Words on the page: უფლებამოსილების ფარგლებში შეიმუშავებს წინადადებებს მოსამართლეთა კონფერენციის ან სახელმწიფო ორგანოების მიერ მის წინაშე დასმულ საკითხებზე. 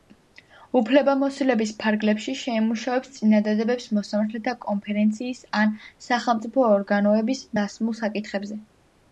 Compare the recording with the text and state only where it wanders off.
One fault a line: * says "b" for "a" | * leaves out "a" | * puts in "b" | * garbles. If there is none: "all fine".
* leaves out "მიერ მის წინაშე"